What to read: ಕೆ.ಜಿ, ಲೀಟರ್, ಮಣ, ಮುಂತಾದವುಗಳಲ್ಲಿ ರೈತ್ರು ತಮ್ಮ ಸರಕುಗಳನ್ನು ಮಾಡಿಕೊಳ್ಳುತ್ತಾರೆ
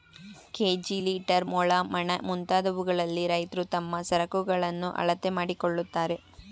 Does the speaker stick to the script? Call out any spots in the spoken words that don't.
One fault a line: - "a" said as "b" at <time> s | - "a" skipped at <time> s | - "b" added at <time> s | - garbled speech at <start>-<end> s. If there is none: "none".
- "ಮೊಳ" added at 1.5 s
- "ಅಳತೆ" added at 5.0 s